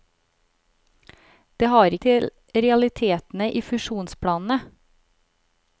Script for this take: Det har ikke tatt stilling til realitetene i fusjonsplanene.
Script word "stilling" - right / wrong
wrong